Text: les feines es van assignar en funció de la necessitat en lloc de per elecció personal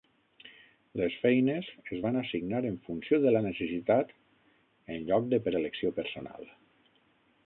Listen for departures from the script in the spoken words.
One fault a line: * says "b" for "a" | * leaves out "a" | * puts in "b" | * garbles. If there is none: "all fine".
all fine